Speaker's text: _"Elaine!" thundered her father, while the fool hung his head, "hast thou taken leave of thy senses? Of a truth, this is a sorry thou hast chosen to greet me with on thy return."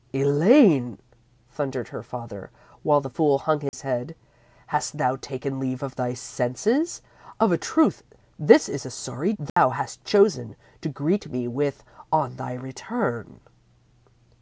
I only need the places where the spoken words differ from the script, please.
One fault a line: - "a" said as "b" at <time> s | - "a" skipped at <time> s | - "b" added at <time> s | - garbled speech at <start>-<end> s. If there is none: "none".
none